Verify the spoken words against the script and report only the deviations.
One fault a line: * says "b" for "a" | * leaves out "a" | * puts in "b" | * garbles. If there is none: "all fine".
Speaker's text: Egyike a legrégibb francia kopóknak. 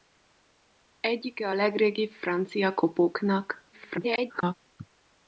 * garbles